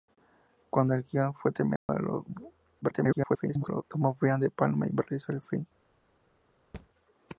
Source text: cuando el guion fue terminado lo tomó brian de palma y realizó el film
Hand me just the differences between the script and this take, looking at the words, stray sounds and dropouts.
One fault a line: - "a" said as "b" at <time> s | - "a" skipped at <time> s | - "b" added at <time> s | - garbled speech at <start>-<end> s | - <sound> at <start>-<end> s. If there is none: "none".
- dropout at 1.8-1.9 s
- garbled speech at 2.8-3.8 s
- thud at 6.7-6.9 s